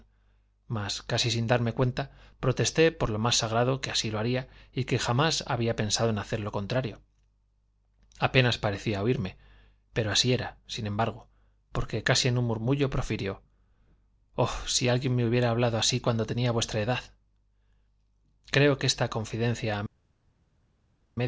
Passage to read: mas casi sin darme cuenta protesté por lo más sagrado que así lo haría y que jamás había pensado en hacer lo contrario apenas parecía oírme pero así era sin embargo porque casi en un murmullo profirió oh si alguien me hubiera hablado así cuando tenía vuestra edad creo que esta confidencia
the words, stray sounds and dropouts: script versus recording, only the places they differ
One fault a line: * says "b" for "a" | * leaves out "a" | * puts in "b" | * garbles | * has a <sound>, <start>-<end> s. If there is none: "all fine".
all fine